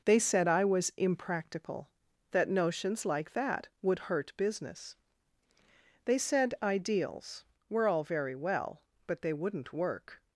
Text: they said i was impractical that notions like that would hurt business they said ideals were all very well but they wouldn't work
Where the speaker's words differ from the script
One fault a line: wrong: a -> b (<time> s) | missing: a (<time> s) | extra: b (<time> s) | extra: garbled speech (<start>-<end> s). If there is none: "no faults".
no faults